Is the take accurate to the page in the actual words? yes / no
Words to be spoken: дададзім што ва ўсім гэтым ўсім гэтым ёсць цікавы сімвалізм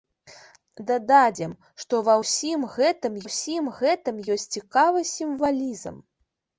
yes